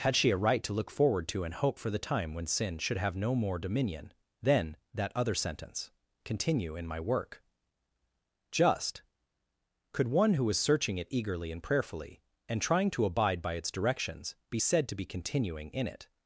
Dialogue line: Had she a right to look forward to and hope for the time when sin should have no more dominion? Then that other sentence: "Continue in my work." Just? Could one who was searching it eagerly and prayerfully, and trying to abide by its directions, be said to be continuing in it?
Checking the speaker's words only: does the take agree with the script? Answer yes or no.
yes